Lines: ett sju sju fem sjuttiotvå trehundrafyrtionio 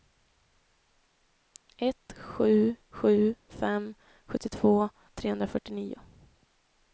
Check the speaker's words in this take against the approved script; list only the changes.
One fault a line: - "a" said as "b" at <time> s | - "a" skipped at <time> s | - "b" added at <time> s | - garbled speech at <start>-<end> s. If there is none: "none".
none